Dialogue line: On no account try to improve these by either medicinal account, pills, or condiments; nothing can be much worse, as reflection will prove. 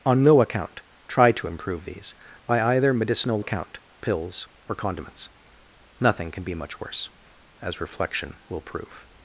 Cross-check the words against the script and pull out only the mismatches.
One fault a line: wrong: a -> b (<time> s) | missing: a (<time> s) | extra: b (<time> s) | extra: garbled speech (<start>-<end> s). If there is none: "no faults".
no faults